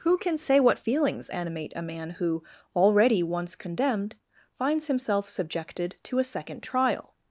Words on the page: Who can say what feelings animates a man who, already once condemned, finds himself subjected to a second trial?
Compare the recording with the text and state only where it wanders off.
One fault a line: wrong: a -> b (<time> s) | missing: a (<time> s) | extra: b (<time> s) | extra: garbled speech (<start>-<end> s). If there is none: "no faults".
wrong: animates -> animate (1.3 s)